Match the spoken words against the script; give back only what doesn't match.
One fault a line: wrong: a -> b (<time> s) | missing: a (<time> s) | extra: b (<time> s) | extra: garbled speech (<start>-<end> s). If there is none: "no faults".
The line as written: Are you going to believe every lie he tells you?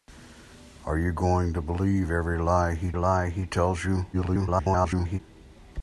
extra: lie he (3.0 s)
extra: garbled speech (4.1-5.2 s)